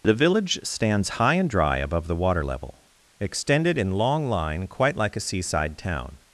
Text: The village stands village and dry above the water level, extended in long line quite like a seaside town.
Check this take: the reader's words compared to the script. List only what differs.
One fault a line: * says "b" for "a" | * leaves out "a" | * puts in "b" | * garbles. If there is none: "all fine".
* says "high" for "village"